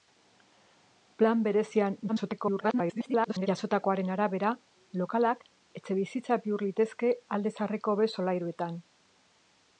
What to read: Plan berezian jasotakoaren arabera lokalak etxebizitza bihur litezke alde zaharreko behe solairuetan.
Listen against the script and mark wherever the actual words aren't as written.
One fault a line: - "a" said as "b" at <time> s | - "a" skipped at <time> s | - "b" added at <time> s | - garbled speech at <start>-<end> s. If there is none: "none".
- garbled speech at 2.1-3.5 s